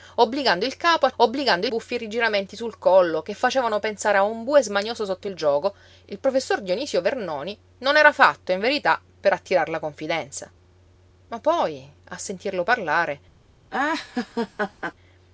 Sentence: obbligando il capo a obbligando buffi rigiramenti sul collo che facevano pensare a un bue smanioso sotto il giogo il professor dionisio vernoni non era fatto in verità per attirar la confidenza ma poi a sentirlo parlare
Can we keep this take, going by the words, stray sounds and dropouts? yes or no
no